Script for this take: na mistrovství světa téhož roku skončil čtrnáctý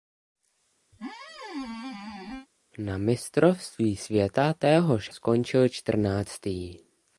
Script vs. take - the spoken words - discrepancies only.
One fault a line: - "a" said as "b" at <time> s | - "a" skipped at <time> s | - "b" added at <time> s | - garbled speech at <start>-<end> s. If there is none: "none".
- "roku" skipped at 5.1 s